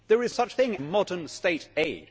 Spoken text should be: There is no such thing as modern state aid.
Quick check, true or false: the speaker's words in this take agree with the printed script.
false